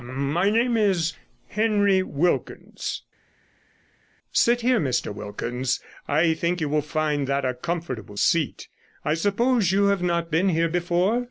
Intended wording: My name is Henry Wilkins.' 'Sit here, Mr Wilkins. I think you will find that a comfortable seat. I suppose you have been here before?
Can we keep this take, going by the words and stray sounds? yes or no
no